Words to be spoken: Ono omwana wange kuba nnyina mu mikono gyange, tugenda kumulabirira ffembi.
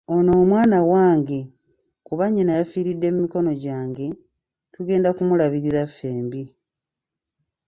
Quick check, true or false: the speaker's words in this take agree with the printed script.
false